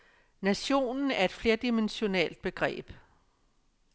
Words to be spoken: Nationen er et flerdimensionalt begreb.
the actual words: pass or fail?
pass